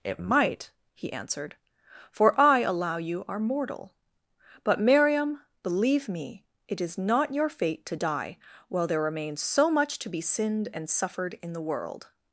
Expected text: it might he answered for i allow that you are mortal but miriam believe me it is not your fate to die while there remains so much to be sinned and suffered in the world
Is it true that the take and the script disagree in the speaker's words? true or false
true